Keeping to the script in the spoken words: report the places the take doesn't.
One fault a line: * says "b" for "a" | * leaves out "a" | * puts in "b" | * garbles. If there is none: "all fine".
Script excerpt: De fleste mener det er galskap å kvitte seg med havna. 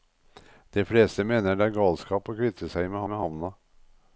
* puts in "med"